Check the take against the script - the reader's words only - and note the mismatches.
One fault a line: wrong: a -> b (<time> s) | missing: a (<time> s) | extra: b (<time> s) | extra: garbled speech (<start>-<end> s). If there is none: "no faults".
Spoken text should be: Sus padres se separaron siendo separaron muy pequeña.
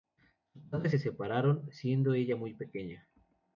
wrong: separaron -> ella (2.1 s)